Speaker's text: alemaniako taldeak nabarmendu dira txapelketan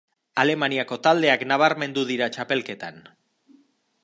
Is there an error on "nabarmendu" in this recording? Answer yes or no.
no